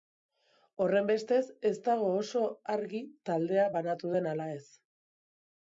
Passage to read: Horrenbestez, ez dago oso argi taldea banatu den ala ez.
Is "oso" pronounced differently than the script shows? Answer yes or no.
no